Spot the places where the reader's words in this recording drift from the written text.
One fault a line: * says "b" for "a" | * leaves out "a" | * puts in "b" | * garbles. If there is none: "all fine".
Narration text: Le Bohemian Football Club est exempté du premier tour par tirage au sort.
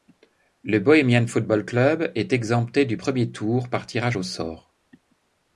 all fine